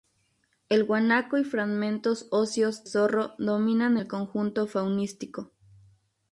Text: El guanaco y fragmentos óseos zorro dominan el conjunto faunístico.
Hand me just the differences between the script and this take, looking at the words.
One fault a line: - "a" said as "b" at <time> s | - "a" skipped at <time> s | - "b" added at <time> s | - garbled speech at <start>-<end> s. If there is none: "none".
none